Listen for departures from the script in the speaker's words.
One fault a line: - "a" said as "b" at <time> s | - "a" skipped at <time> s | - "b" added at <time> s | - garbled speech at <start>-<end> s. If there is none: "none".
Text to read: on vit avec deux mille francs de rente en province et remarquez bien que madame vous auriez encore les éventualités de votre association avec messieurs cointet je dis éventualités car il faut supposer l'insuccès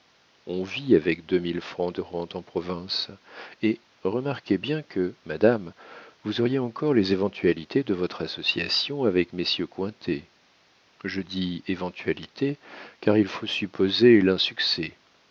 none